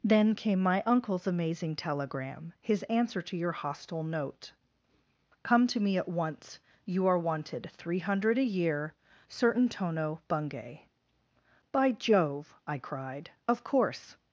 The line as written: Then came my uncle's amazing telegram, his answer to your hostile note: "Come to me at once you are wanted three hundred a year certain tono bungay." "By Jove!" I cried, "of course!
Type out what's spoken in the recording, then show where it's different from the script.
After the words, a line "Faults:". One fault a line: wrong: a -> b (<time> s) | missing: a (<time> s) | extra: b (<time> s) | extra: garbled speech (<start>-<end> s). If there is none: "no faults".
Then came my uncle's amazing telegram, his answer to your hostile note: "Come to me at once you are wanted three hundred a year certain tono bungay." "By Jove!" I cried, "of course!
Faults:
no faults